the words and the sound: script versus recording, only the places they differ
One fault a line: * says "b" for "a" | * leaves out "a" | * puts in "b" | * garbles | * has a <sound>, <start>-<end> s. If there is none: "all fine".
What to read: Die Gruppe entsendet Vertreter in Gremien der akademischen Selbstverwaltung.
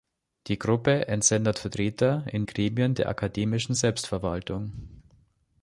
all fine